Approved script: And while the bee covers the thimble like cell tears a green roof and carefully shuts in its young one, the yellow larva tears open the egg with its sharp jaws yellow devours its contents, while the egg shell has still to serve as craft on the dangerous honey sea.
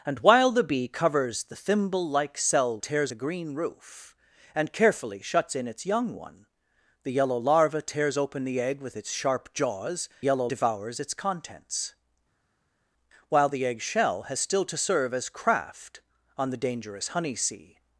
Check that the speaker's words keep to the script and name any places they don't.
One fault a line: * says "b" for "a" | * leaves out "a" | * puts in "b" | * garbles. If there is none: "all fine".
all fine